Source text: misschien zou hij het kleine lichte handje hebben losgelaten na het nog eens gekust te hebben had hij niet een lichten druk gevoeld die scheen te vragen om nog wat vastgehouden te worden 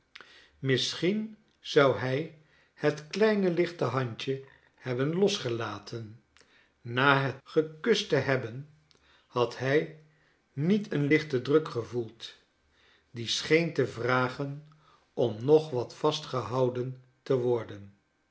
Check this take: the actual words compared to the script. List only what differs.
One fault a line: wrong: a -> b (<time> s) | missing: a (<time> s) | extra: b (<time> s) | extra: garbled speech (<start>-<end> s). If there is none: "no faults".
missing: nog eens (7.4 s)